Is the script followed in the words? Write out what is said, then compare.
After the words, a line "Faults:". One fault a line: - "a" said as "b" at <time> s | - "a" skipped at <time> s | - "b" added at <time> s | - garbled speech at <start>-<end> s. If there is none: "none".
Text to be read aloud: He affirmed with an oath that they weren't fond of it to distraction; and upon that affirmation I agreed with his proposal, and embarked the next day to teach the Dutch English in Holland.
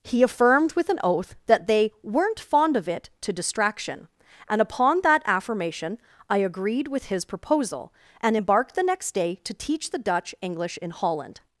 He affirmed with an oath that they weren't fond of it to distraction; and upon that affirmation I agreed with his proposal, and embarked the next day to teach the Dutch English in Holland.
Faults:
none